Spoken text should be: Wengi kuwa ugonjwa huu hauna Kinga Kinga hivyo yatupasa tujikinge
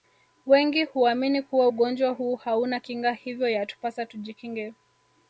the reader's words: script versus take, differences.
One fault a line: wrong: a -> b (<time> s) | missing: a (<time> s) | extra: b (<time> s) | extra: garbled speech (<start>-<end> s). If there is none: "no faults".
extra: huamini (0.8 s)
missing: Kinga (3.1 s)